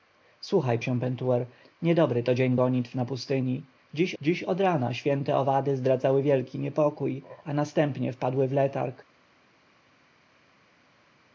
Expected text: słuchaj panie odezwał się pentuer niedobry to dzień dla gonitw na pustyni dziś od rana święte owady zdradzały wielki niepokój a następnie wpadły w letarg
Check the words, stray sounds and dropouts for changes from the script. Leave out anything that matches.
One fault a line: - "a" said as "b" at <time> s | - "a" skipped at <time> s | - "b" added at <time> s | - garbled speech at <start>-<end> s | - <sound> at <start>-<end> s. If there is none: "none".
- "panie odezwał" skipped at 0.8 s
- "dla" skipped at 2.6 s
- "dziś" added at 4.2 s